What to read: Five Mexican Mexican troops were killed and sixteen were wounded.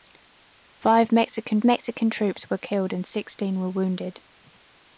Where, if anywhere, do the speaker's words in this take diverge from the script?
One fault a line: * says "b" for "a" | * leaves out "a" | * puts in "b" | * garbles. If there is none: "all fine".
all fine